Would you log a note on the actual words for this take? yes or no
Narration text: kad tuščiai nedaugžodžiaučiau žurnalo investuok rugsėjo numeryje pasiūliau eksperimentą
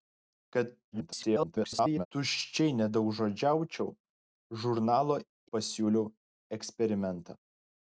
yes